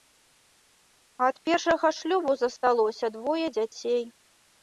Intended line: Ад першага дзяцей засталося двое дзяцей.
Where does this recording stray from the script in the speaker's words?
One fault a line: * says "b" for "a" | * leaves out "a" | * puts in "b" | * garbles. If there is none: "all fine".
* says "шлюбу" for "дзяцей"